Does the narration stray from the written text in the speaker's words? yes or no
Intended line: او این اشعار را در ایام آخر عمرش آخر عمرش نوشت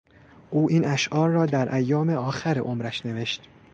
yes